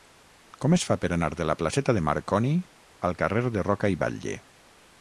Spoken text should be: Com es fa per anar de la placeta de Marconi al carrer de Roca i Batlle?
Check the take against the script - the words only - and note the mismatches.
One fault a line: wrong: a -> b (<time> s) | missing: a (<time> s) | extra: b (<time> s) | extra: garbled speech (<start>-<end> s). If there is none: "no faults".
no faults